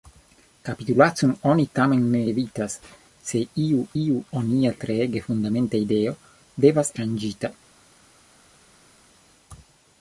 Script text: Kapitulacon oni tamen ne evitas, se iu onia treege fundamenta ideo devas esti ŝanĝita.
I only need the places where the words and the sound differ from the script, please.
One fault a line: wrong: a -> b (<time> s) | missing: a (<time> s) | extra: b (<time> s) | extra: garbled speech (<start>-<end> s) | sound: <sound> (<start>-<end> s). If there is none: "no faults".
extra: iu (4.0 s)
missing: esti (6.9 s)